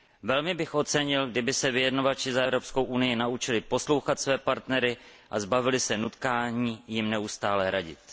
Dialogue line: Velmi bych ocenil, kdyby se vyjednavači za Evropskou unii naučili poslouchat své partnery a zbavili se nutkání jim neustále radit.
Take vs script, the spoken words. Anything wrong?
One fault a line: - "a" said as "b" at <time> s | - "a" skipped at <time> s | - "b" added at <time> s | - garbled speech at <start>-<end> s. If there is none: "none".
none